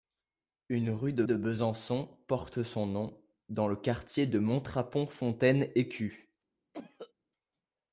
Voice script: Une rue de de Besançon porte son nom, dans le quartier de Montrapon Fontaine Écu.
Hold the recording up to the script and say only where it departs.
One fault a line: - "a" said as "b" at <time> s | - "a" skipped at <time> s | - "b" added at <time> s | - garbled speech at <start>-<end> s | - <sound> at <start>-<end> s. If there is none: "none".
- cough at 6.7-7.1 s